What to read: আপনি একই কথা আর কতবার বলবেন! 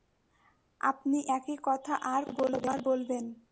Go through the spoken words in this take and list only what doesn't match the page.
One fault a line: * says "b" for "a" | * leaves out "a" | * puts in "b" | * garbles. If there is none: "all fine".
all fine